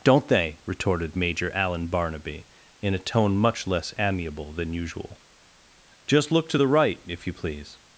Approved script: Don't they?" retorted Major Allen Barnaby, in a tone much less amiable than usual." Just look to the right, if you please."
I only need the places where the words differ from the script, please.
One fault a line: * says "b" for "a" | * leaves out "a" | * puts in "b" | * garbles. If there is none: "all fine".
all fine